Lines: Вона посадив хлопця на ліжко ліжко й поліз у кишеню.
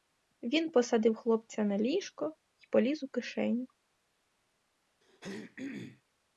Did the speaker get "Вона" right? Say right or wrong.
wrong